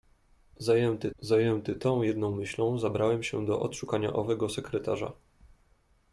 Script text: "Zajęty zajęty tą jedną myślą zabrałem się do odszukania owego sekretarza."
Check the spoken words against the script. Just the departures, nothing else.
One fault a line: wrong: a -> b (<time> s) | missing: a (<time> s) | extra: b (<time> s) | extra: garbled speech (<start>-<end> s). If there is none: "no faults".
no faults